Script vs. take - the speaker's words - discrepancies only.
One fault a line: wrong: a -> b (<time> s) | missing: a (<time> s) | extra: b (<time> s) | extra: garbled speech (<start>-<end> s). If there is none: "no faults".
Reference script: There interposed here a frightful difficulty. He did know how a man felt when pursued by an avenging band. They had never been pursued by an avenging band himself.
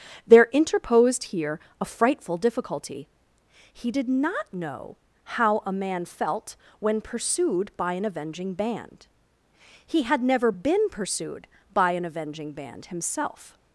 extra: not (4.1 s)
wrong: They -> He (9.8 s)